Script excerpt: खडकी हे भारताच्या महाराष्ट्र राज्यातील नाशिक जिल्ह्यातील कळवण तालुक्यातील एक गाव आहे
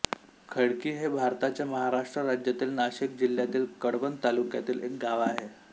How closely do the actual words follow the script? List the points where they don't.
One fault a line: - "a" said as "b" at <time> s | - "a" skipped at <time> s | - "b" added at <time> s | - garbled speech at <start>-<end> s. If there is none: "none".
none